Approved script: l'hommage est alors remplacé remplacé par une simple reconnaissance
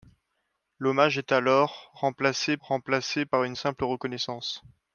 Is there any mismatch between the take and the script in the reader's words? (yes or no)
no